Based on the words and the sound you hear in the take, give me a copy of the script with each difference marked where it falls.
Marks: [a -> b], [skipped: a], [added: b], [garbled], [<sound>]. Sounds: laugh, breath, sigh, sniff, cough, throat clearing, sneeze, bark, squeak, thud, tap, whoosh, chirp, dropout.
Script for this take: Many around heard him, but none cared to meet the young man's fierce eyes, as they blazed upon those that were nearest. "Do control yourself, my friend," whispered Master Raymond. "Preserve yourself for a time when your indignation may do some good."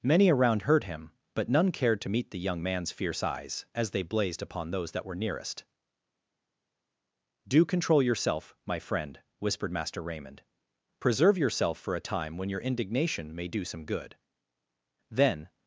Many around heard him, but none cared to meet the young man's fierce eyes, as they blazed upon those that were nearest. "Do control yourself, my friend," whispered Master Raymond. "Preserve yourself for a time when your indignation may do some good." [added: Then]